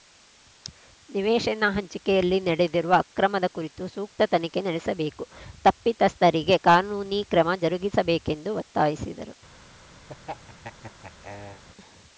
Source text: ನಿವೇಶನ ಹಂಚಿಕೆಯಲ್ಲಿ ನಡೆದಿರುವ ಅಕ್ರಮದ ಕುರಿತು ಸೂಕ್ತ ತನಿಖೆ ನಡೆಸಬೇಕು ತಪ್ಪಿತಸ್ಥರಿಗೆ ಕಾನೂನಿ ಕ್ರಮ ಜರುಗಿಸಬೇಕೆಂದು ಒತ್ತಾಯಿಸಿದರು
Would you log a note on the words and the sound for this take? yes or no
yes